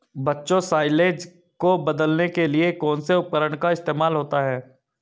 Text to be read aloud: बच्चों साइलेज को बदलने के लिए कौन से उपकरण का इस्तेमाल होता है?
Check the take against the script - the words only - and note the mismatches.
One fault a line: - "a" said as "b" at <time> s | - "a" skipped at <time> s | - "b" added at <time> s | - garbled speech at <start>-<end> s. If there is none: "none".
none